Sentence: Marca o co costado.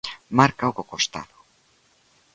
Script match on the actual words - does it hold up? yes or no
yes